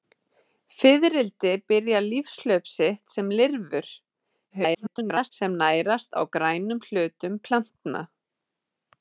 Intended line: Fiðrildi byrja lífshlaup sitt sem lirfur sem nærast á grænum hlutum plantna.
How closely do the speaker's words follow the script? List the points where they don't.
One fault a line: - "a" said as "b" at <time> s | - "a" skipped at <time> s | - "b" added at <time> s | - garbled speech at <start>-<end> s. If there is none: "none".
- garbled speech at 4.5-5.3 s